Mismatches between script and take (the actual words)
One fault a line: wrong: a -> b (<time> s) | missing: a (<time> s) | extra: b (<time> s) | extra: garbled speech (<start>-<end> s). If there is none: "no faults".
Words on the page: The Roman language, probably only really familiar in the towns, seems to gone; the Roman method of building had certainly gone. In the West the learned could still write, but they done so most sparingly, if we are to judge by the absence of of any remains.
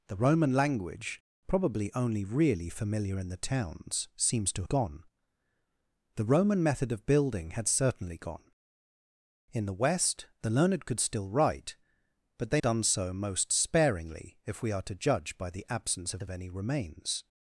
no faults